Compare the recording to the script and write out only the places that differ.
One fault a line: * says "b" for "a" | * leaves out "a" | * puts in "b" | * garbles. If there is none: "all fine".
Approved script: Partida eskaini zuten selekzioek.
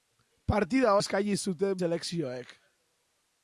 all fine